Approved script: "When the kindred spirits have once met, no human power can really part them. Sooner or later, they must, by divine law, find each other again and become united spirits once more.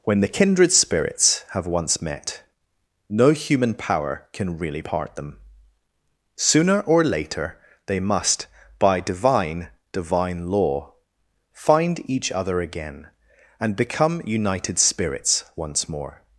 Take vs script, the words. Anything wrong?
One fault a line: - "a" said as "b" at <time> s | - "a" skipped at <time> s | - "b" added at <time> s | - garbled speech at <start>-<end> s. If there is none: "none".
- "divine" added at 9.9 s